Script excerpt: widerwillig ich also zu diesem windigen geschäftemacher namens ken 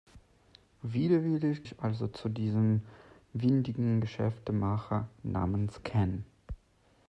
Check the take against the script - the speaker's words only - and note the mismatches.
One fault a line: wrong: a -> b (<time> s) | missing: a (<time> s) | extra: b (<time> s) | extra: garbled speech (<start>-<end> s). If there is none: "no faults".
no faults